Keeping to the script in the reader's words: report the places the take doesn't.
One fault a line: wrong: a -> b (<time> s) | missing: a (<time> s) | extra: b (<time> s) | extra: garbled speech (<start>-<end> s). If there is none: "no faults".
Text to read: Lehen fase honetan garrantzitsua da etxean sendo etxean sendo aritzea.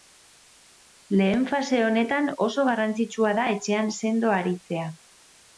extra: oso (2.5 s)
missing: etxean sendo (4.4 s)